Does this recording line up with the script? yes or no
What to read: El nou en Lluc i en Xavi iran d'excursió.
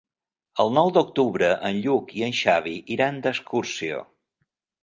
no